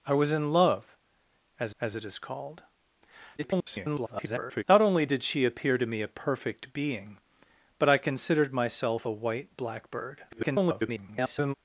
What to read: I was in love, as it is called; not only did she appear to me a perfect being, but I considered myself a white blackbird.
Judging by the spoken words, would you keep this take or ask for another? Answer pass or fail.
fail